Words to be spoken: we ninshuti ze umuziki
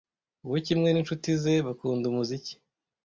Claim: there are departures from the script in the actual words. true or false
true